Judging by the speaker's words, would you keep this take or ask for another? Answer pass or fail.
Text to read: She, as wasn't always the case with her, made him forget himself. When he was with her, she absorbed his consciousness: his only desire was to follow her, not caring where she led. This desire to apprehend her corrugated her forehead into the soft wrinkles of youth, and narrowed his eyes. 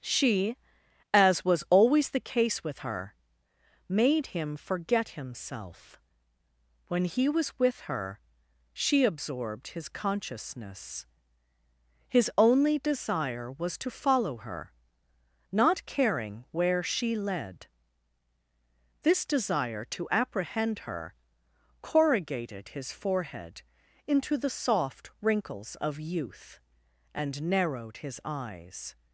fail